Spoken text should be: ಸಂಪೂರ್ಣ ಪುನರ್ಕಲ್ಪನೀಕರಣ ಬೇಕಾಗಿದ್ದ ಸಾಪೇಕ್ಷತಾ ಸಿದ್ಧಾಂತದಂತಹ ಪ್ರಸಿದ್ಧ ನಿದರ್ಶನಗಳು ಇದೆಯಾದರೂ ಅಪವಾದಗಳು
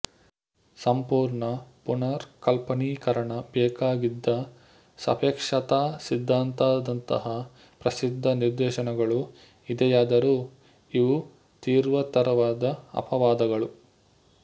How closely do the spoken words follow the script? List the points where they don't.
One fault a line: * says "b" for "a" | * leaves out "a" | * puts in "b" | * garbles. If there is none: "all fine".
* puts in "ಇವು ತೀವ್ರತರವಾದ"